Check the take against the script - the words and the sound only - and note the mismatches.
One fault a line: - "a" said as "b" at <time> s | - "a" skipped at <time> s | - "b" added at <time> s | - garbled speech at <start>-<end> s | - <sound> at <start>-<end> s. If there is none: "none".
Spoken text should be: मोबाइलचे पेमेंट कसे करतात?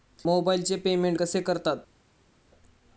none